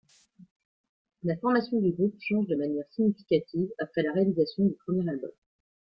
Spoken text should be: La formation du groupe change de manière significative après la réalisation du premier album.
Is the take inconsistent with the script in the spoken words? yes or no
no